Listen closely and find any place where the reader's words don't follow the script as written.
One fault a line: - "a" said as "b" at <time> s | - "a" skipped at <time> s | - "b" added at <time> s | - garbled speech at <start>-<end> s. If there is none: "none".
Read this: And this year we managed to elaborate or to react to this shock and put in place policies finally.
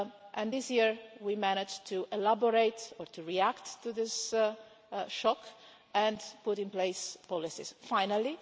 none